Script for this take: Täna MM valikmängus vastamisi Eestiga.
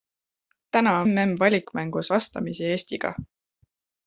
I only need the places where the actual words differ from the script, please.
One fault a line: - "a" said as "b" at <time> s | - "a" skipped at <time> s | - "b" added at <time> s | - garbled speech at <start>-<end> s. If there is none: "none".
none